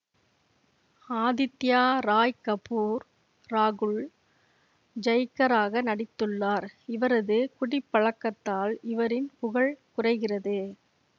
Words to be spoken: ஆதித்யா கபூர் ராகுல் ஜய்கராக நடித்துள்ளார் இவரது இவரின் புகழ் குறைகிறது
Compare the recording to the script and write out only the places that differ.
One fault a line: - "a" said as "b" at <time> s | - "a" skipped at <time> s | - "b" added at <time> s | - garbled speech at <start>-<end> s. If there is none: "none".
- "ராய்" added at 2.0 s
- "குடிப்பழக்கத்தால்" added at 7.6 s